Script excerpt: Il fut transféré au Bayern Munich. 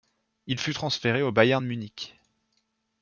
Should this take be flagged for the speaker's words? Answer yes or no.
no